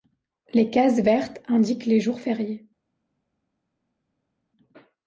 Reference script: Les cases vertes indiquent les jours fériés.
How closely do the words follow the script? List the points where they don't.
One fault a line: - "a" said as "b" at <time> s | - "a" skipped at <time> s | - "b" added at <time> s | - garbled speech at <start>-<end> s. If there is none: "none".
none